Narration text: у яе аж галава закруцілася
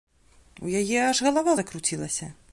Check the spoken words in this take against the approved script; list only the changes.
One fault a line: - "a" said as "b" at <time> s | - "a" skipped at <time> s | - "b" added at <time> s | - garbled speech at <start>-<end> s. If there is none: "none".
none